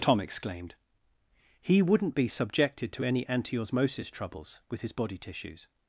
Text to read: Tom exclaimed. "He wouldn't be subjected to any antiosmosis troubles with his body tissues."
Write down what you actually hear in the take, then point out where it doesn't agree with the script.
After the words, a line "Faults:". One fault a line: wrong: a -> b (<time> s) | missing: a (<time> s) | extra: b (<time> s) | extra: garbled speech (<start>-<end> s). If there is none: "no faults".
Tom exclaimed. "He wouldn't be subjected to any antiosmosis troubles with his body tissues."
Faults:
no faults